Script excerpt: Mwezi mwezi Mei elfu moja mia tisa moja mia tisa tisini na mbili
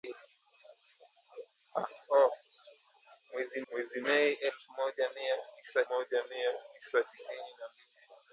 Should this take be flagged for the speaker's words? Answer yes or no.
no